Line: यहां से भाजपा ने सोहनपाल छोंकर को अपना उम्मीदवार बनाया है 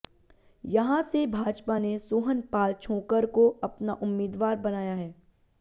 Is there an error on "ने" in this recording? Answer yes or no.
no